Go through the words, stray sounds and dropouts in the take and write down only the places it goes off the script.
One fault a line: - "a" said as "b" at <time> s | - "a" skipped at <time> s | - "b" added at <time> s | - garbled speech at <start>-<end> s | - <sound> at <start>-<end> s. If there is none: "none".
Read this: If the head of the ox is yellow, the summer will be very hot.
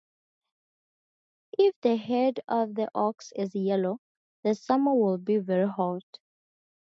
none